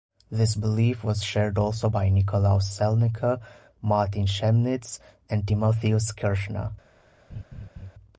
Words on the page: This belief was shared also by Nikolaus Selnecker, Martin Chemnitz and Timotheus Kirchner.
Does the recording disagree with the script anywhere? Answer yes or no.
no